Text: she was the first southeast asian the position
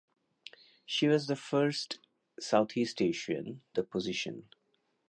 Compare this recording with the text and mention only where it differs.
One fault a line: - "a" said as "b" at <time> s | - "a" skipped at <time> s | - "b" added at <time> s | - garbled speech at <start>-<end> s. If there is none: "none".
none